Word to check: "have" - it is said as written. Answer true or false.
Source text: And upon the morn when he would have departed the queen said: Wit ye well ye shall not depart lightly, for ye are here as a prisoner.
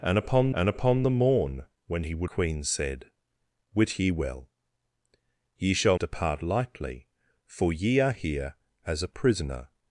false